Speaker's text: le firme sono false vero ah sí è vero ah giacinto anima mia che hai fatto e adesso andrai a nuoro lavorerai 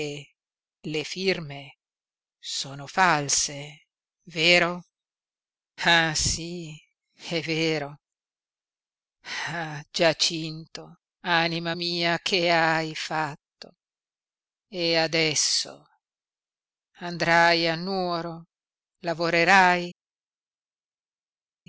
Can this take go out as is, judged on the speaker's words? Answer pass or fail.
pass